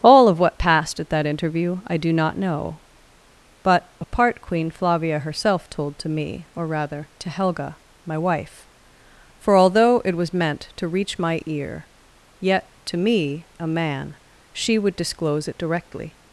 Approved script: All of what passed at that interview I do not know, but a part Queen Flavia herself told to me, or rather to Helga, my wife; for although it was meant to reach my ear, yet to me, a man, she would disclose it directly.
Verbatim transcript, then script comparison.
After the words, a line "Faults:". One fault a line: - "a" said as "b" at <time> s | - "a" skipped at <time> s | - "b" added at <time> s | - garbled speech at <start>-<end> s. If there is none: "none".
All of what passed at that interview I do not know, but a part Queen Flavia herself told to me, or rather to Helga, my wife; for although it was meant to reach my ear, yet to me, a man, she would disclose it directly.
Faults:
none